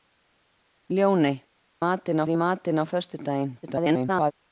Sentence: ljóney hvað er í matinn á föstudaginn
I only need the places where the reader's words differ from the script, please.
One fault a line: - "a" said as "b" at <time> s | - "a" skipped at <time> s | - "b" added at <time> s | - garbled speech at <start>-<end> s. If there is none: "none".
- "hvað" said as "matinn" at 1.8 s
- garbled speech at 3.6-4.3 s